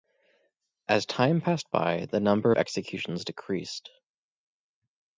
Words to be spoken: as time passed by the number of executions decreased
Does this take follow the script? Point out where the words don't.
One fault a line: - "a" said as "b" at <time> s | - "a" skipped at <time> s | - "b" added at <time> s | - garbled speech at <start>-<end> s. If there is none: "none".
none